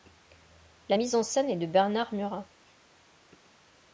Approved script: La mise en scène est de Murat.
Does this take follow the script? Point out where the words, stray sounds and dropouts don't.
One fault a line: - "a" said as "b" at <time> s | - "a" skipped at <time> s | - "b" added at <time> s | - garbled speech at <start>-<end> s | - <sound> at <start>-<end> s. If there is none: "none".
- "Bernard" added at 1.7 s